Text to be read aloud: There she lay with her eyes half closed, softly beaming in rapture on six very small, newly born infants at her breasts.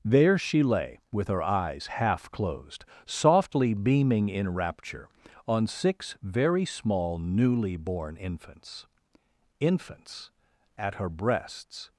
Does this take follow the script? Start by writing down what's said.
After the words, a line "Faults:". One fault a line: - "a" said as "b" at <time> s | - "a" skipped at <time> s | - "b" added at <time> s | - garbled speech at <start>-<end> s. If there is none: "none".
There she lay with her eyes half closed, softly beaming in rapture on six very small, newly born infants infants at her breasts.
Faults:
- "infants" added at 9.6 s